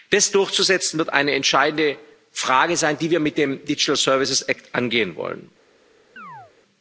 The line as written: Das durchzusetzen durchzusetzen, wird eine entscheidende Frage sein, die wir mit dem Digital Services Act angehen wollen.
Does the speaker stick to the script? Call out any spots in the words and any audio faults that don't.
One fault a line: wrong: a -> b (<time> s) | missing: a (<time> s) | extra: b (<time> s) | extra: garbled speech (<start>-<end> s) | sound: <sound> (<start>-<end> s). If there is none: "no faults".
missing: durchzusetzen (1.0 s)
sound: chirp (6.2-6.5 s)